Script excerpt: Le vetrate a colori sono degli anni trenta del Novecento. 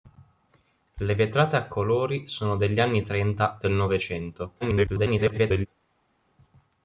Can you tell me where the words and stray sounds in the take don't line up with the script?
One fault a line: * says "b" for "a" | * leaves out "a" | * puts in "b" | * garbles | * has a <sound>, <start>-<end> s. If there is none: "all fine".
* garbles